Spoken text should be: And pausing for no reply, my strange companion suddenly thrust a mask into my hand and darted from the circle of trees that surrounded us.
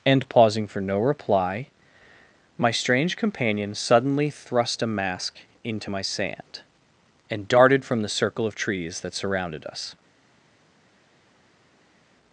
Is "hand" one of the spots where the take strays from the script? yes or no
yes